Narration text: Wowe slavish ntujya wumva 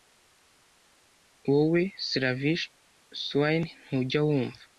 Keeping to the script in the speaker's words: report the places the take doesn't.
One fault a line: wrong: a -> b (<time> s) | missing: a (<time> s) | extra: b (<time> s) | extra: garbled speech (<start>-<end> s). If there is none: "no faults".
extra: swain (3.2 s)